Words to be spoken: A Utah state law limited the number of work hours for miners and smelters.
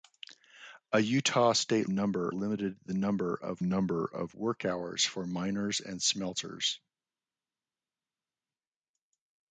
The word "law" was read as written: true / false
false